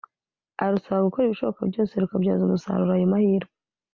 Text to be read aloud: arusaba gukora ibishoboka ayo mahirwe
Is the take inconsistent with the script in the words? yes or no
yes